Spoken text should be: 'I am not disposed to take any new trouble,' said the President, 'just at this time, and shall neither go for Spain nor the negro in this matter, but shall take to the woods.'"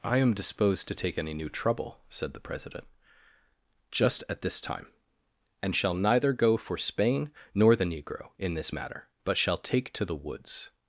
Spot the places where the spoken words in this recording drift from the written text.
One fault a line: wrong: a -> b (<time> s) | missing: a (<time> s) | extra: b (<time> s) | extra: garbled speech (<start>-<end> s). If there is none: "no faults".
missing: not (0.3 s)